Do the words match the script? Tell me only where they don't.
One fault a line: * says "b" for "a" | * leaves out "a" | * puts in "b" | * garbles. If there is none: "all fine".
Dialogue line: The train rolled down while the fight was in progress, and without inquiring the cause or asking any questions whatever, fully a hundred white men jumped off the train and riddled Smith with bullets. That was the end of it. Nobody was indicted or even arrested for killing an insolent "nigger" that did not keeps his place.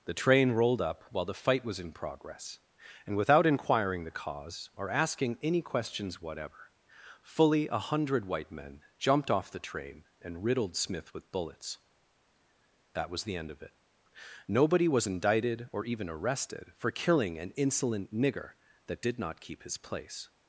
* says "up" for "down"
* says "keep" for "keeps"